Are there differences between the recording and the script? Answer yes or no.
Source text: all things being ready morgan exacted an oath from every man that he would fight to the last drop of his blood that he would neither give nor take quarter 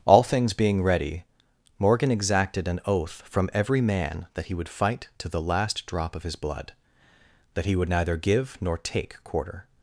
no